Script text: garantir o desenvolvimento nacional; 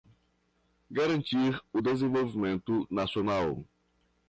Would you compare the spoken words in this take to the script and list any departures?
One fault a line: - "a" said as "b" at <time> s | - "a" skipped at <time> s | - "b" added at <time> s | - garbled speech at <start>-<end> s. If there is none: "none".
none